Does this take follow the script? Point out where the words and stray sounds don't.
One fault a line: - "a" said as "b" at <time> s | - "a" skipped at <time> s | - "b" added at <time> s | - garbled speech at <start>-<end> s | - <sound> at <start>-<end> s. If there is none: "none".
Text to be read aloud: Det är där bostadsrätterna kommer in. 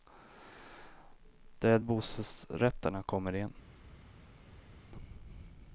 - "där" skipped at 1.8 s